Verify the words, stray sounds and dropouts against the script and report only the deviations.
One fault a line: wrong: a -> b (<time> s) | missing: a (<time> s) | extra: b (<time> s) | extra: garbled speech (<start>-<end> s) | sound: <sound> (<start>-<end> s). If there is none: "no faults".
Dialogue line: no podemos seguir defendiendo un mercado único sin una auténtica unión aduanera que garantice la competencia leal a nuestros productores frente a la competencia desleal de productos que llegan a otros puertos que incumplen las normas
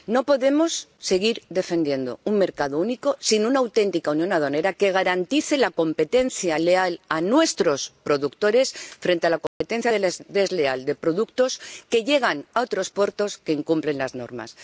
sound: dropout (9.5-9.6 s)